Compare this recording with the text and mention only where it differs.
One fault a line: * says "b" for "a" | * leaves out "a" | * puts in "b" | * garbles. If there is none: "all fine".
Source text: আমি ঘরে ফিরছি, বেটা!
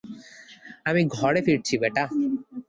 all fine